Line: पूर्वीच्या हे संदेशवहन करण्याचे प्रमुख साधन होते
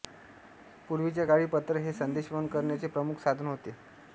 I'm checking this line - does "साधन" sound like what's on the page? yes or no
yes